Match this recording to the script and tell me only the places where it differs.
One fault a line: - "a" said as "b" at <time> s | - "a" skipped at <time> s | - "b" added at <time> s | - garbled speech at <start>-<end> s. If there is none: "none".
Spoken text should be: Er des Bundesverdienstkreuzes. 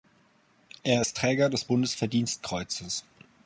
- "ist Träger" added at 1.0 s